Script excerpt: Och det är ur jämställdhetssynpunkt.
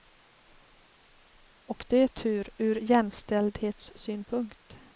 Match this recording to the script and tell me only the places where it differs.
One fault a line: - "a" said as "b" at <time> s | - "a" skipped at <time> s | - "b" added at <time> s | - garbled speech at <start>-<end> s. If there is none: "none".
- "tur" added at 2.1 s